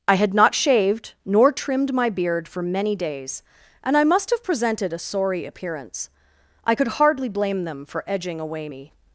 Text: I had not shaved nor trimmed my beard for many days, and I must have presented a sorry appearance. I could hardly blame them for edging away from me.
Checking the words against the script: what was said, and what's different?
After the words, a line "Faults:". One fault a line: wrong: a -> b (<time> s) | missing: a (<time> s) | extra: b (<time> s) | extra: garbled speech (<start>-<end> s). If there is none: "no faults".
I had not shaved nor trimmed my beard for many days, and I must have presented a sorry appearance. I could hardly blame them for edging away me.
Faults:
missing: from (8.7 s)